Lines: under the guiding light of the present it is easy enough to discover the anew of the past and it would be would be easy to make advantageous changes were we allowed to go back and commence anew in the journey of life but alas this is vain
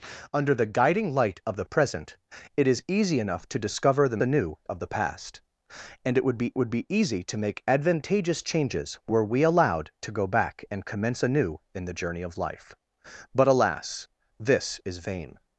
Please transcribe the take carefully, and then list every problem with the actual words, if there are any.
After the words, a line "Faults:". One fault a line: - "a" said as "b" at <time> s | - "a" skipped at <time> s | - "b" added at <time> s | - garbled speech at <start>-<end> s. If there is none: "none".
under the guiding light of the present it is easy enough to discover the anew of the past and it would be would be easy to make advantageous changes were we allowed to go back and commence anew in the journey of life but alas this is vain
Faults:
none